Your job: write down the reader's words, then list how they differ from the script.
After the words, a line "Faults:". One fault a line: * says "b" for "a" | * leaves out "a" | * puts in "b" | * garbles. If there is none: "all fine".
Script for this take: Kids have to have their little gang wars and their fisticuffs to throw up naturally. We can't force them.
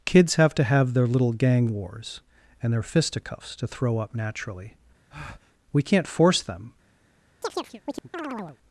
Kids have to have their little gang wars and their fisticuffs to throw up naturally. We can't force them.
Faults:
all fine